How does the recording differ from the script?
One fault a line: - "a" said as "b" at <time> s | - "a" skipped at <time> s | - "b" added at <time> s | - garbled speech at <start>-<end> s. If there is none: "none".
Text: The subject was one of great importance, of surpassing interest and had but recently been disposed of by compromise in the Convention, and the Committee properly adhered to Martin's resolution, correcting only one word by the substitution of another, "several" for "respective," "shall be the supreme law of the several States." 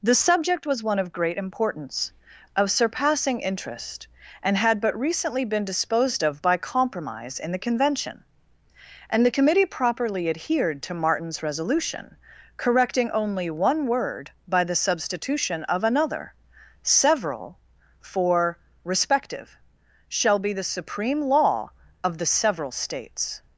none